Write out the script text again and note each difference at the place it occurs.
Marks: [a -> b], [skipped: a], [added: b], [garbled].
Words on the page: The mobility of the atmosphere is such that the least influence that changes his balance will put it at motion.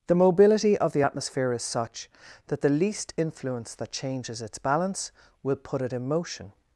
The mobility of the atmosphere is such that the least influence that changes [his -> its] balance will put it [at -> in] motion.